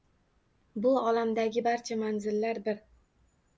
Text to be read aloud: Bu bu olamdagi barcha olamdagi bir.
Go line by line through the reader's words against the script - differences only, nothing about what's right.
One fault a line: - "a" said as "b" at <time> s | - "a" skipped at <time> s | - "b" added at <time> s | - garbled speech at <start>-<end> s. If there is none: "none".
- "bu" skipped at 0.9 s
- "olamdagi" said as "manzillar" at 2.0 s